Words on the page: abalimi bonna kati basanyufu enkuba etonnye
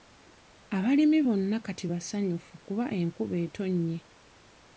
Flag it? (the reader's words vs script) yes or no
yes